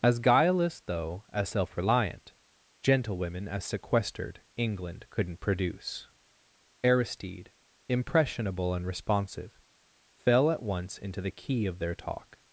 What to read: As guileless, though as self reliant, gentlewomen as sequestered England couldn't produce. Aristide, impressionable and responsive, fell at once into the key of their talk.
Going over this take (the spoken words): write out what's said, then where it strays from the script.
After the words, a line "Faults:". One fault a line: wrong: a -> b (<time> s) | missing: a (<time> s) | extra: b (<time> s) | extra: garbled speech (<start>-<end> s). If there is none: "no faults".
As guileless, though as self reliant, gentlewomen as sequestered England couldn't produce. Aristide, impressionable and responsive, fell at once into the key of their talk.
Faults:
no faults